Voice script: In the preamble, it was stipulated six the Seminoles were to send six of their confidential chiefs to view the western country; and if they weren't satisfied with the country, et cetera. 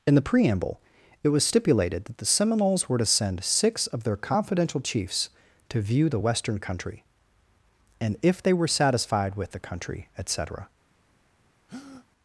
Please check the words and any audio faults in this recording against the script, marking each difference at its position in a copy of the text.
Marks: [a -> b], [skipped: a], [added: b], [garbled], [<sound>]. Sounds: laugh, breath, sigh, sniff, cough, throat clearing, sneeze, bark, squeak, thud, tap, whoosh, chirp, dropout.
In the preamble, it was stipulated [six -> that] the Seminoles were to send six of their confidential chiefs to view the western country; and if they [weren't -> were] satisfied with the country, et cetera. [breath]